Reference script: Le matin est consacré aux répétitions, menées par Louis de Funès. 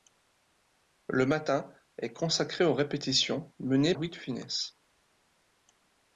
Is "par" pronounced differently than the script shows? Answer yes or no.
yes